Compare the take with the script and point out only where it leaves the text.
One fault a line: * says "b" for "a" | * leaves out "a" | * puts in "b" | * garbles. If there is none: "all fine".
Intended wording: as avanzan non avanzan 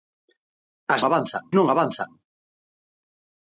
all fine